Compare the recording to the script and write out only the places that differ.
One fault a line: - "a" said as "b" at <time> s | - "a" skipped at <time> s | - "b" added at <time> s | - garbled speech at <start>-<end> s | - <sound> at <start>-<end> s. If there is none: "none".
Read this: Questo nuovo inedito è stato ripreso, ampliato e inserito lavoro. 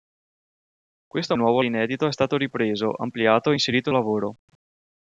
none